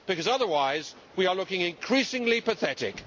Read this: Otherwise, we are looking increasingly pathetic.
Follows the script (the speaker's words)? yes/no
yes